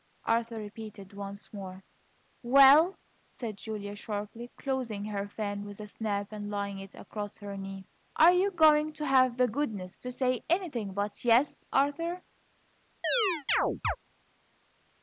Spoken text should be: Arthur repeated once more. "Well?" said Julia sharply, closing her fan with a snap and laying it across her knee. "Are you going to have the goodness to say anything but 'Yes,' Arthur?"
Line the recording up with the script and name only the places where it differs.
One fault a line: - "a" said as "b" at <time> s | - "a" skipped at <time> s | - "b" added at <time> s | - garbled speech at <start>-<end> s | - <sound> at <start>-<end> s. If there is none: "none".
- chirp at 13.0-14.0 s